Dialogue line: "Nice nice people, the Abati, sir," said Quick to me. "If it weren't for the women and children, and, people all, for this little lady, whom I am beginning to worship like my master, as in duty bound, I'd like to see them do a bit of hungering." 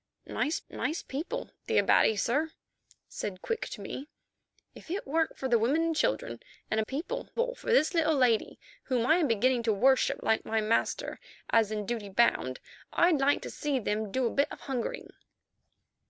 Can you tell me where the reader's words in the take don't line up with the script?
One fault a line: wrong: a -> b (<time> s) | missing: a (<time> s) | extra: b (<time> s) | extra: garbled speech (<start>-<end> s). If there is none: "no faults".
no faults